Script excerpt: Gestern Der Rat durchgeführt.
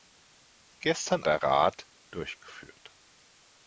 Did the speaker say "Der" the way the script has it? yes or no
yes